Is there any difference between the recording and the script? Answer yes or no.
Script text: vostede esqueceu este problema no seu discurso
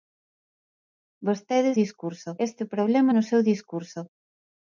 yes